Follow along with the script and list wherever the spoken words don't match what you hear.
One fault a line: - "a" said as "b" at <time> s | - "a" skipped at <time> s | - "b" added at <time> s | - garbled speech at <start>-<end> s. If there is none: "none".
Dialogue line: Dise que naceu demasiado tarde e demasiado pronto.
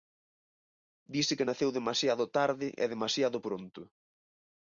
none